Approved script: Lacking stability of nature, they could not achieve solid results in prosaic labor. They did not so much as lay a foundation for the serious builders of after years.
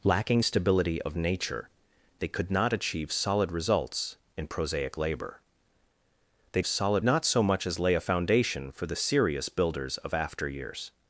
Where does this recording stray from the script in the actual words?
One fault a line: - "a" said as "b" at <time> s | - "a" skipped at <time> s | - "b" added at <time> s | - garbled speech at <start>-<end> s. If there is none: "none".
- "did" said as "solid" at 6.6 s